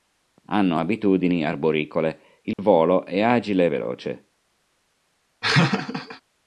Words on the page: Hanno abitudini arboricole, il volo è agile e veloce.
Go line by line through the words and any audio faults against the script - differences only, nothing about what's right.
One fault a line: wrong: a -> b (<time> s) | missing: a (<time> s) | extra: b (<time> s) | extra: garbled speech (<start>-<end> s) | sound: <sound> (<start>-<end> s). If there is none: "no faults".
sound: dropout (2.5-2.6 s)
sound: laugh (5.4-6.2 s)